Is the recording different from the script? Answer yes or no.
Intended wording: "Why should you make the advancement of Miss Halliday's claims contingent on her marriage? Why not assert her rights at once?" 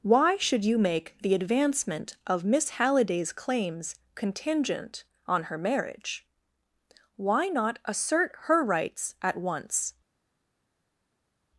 no